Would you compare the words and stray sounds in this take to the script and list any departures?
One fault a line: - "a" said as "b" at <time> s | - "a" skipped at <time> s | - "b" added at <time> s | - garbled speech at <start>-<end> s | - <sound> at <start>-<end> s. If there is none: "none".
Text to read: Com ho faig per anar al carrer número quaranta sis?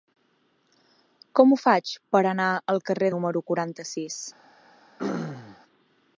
- throat clearing at 5.0-5.6 s